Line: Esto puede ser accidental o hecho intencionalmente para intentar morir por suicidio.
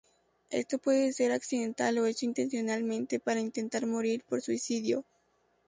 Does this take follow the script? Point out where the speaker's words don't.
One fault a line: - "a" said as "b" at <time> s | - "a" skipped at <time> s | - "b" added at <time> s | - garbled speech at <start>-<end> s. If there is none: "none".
none